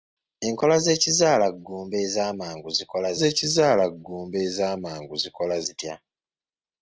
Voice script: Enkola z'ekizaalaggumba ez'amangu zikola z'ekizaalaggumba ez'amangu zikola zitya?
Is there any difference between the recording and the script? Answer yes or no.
no